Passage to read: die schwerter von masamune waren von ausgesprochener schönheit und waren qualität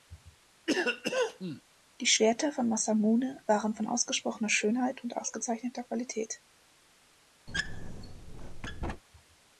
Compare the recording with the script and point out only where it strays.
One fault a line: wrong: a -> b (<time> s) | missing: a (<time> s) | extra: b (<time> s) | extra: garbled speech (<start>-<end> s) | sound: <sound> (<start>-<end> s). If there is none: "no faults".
sound: cough (0.7-1.6 s)
wrong: waren -> ausgezeichneter (5.2 s)
sound: squeak (7.5-9.0 s)